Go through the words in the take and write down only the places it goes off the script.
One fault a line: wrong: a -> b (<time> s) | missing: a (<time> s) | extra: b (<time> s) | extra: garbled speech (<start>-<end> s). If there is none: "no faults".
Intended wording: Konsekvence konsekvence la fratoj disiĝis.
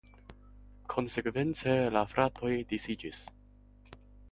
missing: konsekvence (1.8 s)